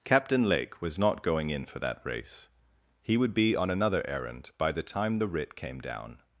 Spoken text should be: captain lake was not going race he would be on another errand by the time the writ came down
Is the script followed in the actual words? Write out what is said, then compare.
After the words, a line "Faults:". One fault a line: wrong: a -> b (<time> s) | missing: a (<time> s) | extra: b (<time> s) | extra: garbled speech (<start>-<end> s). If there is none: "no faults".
captain lake was not going in for that race he would be on another errand by the time the writ came down
Faults:
extra: in for that (1.5 s)